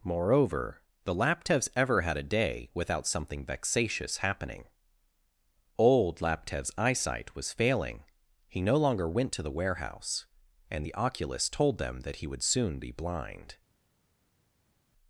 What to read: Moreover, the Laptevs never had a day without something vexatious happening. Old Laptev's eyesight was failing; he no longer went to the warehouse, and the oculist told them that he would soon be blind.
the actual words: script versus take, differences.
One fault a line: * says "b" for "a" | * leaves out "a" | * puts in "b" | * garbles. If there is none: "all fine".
* says "ever" for "never"